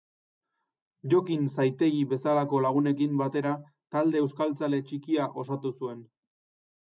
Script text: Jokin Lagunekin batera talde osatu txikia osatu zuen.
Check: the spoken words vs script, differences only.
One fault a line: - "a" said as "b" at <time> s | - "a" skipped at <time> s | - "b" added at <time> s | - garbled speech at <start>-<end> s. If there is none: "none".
- "Zaitegi bezalako" added at 1.6 s
- "osatu" said as "euskaltzale" at 4.2 s